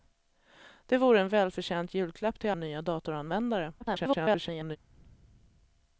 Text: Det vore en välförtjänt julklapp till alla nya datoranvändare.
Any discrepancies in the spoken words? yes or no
yes